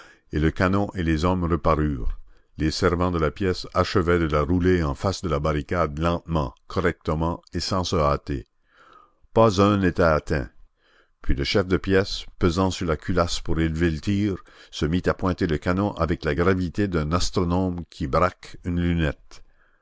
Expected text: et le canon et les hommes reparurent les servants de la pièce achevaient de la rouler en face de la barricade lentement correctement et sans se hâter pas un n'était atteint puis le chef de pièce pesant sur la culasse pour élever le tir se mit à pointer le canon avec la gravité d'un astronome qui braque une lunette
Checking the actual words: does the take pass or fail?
pass